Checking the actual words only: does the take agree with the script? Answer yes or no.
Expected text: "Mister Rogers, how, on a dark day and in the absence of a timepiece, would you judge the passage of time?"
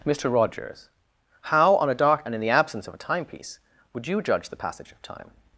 no